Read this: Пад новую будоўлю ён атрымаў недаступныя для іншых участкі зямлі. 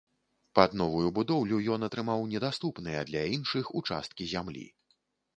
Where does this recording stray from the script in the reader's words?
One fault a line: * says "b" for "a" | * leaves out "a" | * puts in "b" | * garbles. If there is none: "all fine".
all fine